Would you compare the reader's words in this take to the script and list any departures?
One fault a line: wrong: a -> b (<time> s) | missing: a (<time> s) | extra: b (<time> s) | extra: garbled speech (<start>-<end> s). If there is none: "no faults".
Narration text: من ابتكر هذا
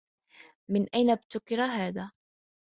extra: أين (0.9 s)